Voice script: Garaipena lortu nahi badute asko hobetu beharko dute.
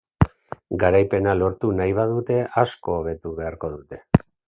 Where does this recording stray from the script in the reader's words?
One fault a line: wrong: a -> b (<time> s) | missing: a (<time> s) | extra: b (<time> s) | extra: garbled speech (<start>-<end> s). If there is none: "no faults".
no faults